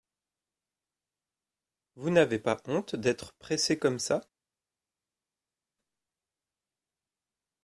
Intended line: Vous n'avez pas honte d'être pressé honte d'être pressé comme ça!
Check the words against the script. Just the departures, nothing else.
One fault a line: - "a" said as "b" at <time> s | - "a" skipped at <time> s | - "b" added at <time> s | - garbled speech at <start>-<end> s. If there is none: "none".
- "honte d'être pressé" skipped at 3.8 s